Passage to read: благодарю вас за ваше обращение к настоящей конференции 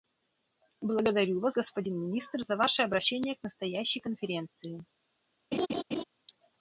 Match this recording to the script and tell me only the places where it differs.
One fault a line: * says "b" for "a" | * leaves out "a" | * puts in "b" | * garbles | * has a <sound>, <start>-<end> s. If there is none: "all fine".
* puts in "господин министр"
* has a laugh, 5.5-6.0 s